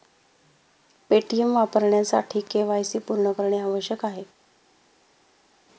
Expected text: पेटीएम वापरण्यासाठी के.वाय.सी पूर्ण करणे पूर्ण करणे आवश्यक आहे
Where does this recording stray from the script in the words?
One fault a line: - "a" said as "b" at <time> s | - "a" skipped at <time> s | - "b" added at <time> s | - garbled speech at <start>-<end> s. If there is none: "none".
- "पूर्ण करणे" skipped at 3.6 s